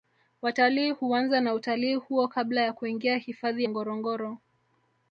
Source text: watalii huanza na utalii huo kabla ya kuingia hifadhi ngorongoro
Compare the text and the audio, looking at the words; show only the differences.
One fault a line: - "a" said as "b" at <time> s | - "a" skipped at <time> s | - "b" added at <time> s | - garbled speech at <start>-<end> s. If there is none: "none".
none